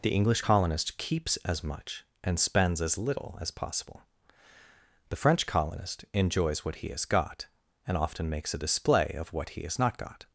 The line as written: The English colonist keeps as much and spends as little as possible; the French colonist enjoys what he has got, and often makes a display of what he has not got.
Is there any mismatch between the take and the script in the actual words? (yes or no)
no